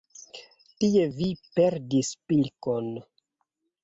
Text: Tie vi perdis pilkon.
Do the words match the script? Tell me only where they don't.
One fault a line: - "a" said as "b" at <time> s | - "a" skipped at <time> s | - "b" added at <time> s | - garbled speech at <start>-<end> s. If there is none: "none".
none